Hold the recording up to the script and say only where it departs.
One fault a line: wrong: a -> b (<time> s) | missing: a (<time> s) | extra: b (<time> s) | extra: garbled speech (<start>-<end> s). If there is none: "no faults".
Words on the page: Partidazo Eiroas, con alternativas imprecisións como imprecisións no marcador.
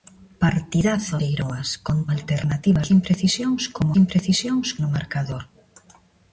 no faults